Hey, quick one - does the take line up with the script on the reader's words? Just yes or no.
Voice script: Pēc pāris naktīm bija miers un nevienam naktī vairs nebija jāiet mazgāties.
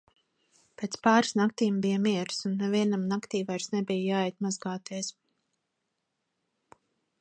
yes